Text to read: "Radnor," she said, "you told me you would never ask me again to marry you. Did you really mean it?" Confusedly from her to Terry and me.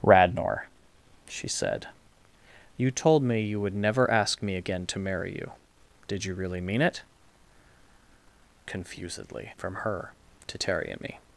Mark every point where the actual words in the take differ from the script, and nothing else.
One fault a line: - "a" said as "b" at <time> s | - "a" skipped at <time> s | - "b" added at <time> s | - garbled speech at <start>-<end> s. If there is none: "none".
none